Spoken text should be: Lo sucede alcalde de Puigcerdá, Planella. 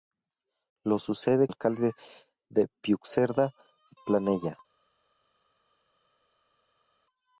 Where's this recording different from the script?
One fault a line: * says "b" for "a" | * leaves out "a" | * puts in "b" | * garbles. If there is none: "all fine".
all fine